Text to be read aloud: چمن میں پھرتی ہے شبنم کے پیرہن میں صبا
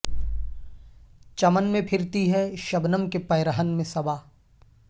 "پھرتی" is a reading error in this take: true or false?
false